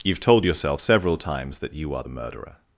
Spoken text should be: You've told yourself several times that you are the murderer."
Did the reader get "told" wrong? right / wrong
right